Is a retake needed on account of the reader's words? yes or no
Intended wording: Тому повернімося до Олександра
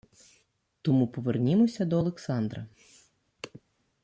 no